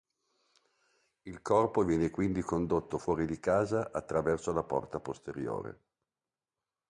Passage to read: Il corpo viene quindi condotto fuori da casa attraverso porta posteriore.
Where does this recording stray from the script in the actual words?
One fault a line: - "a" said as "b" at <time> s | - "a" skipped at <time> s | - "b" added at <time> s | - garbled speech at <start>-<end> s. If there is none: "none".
- "da" said as "di" at 3.3 s
- "la" added at 4.5 s